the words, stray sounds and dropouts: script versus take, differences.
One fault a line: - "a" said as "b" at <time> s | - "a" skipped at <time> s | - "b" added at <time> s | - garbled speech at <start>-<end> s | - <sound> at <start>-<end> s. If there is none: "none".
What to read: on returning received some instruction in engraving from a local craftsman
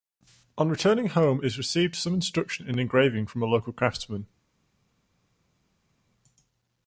- "home is" added at 1.1 s